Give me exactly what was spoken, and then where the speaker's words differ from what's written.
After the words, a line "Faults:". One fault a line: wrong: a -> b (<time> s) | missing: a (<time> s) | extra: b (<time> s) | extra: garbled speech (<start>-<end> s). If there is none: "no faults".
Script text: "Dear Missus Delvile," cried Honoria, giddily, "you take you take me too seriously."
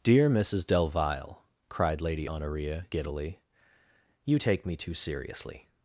"Dear Missus Delvile," cried Lady Honoria, giddily, "you take me too seriously."
Faults:
extra: Lady (2.0 s)
missing: you take (4.7 s)